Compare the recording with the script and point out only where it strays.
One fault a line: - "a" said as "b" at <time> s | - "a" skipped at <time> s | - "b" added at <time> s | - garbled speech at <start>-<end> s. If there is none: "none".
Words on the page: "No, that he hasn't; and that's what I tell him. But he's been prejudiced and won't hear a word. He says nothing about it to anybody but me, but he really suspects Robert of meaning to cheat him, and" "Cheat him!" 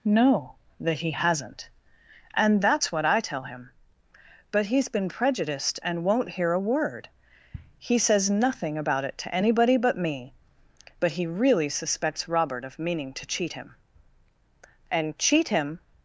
none